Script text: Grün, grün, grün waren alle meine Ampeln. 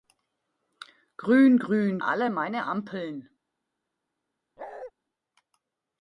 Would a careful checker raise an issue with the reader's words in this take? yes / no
yes